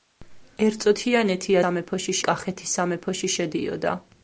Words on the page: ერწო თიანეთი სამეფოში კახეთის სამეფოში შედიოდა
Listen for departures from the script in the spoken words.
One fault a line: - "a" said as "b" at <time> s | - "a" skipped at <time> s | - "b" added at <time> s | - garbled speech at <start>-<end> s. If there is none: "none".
none